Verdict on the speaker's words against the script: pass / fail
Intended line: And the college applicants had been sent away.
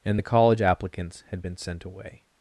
pass